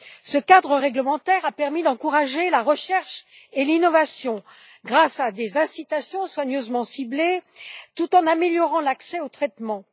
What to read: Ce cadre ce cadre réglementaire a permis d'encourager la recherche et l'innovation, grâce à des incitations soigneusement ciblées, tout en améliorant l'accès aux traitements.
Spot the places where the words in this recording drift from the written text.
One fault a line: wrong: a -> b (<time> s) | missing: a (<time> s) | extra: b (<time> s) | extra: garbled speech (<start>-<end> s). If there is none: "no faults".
missing: ce cadre (0.8 s)